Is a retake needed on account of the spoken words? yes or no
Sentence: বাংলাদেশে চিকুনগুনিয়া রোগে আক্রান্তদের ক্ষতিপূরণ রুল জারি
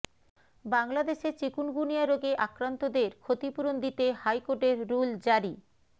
yes